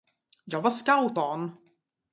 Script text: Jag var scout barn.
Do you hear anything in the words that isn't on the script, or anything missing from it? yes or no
no